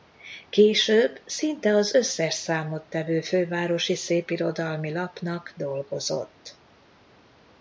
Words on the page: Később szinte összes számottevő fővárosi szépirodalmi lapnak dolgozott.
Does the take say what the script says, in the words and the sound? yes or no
no